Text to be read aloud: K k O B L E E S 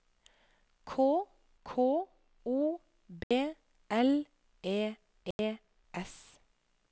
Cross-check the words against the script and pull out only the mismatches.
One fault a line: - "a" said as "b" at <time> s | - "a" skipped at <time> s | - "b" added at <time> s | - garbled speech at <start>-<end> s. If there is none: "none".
none